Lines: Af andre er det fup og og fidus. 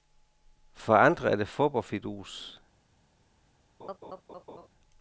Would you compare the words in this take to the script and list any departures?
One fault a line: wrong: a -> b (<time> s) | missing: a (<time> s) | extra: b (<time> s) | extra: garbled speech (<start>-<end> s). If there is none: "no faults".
wrong: Af -> For (0.7 s)
missing: og (1.9 s)